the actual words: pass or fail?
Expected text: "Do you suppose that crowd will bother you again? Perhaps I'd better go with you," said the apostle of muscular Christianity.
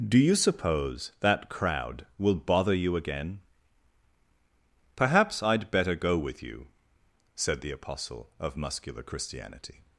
pass